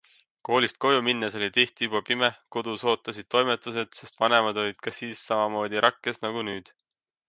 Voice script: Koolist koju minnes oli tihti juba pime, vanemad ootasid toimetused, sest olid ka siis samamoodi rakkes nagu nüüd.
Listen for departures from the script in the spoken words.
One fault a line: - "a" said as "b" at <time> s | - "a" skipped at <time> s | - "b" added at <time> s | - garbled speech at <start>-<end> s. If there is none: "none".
- "vanemad" said as "kodus" at 2.6 s
- "vanemad" added at 4.2 s